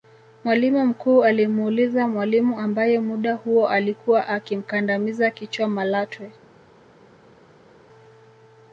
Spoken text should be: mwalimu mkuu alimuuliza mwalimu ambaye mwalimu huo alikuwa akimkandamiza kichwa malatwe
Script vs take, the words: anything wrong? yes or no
yes